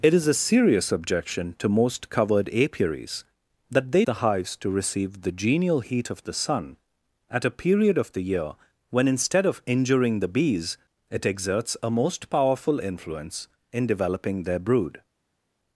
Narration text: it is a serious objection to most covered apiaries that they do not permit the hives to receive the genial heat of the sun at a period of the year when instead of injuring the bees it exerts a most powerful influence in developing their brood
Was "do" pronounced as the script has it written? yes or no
no